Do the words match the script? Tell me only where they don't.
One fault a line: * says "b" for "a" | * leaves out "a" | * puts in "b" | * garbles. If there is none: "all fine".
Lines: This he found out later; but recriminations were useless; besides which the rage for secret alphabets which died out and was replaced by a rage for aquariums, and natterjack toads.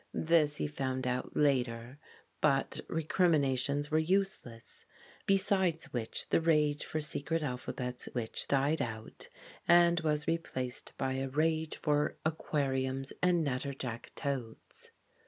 all fine